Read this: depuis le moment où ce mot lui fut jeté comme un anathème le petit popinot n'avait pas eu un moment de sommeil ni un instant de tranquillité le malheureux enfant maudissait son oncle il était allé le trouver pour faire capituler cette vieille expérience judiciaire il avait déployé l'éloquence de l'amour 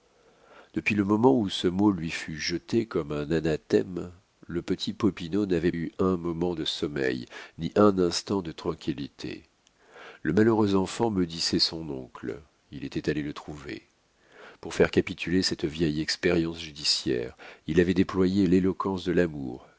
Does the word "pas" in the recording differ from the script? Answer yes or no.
yes